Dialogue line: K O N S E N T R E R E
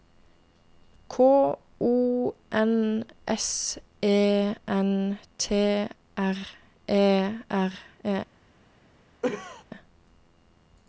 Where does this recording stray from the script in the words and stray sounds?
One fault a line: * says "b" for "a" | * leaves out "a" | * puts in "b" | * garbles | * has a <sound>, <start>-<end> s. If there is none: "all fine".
* has a cough, 9.2-9.6 s